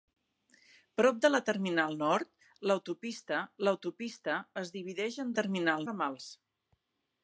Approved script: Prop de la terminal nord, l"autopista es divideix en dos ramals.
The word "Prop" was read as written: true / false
true